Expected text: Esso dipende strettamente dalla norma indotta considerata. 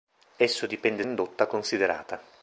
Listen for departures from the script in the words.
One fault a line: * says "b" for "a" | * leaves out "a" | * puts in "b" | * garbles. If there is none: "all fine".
* leaves out "strettamente dalla norma"